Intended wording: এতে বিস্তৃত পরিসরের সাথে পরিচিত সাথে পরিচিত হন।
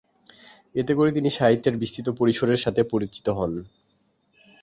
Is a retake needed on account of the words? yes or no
yes